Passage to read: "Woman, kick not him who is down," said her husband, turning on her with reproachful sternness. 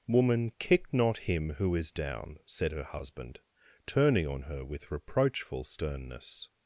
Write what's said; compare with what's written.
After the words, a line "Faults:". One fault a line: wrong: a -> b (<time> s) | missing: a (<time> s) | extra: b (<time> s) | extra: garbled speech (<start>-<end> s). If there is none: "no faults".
"Woman, kick not him who is down," said her husband, turning on her with reproachful sternness.
Faults:
no faults